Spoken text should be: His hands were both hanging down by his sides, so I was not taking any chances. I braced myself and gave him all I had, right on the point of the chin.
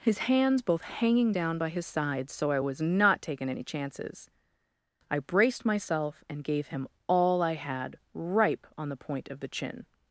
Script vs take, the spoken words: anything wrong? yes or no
yes